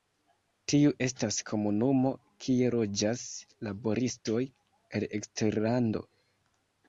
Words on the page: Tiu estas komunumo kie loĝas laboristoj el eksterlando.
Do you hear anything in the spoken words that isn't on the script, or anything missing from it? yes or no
no